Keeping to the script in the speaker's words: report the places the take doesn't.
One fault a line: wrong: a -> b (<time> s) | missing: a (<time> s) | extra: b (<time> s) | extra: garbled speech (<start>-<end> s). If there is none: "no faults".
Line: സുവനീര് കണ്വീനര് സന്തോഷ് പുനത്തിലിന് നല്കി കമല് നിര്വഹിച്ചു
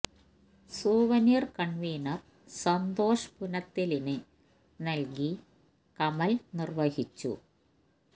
no faults